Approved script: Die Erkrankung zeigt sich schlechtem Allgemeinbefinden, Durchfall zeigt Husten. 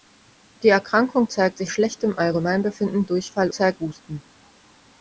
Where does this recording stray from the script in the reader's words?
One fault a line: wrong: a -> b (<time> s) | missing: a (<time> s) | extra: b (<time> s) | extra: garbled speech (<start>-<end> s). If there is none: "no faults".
no faults